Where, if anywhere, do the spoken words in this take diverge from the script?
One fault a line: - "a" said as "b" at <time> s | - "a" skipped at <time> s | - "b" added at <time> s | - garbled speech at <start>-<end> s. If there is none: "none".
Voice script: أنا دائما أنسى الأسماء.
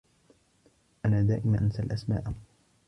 none